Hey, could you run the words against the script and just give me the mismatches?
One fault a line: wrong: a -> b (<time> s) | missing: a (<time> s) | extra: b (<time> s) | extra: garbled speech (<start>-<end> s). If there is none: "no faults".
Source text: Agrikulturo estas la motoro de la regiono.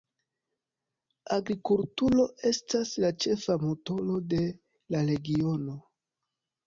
extra: ĉefa (3.2 s)